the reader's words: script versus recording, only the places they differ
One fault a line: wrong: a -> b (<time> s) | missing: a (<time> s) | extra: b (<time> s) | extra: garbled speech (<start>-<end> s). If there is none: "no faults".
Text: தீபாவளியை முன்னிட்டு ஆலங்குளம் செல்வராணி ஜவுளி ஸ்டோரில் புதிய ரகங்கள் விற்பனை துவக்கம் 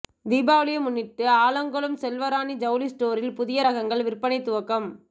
no faults